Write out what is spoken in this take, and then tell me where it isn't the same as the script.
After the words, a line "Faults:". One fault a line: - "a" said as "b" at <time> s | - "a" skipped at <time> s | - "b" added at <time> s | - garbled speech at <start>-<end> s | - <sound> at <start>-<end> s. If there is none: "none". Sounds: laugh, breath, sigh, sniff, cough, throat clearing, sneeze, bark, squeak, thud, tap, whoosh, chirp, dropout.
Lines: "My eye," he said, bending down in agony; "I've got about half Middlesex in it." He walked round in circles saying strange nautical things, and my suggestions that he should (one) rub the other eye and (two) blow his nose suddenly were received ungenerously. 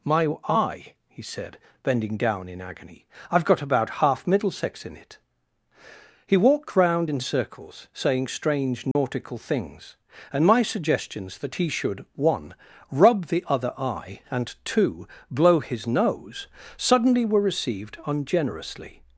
"My eye," he said, bending down in agony; "I've got about half Middlesex in it." He walked round in circles saying strange nautical things, and my suggestions that he should (one) rub the other eye and (two) blow his nose suddenly were received ungenerously.
Faults:
- dropout at 8.9-8.9 s